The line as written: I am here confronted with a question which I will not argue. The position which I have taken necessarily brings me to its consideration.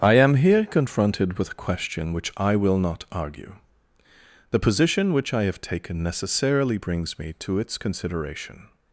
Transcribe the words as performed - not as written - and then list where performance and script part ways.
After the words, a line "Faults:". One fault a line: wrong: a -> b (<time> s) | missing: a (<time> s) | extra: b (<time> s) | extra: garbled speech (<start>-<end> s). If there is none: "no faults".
I am here confronted with a question which I will not argue. The position which I have taken necessarily brings me to its consideration.
Faults:
no faults